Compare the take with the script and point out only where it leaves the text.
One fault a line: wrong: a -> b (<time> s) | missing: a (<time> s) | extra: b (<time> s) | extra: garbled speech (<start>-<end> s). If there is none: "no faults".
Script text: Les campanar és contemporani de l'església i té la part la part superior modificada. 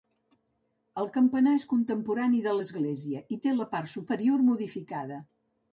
wrong: Les -> El (1.0 s)
missing: la part (3.9 s)